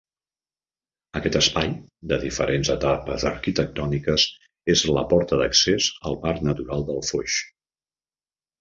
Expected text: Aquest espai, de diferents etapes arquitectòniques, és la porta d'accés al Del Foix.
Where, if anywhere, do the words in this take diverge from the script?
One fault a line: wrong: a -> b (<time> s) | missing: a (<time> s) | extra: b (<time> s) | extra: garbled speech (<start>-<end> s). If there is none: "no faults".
extra: Parc Natural (6.3 s)